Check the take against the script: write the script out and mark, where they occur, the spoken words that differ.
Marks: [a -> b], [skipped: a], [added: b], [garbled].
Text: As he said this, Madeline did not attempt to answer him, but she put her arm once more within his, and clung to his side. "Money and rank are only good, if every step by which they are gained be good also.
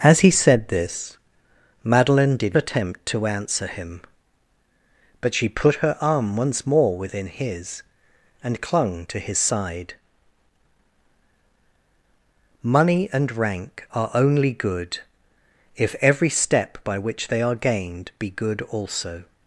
As he said this, Madeline did [skipped: not] attempt to answer him, but she put her arm once more within his, and clung to his side. "Money and rank are only good, if every step by which they are gained be good also.